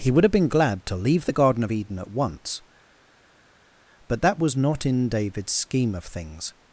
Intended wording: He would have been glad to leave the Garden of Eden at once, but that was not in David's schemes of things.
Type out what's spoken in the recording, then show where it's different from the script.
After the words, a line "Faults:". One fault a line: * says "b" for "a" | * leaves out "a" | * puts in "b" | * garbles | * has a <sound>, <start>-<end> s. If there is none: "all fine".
He would have been glad to leave the Garden of Eden at once, but that was not in David's scheme of things.
Faults:
* says "scheme" for "schemes"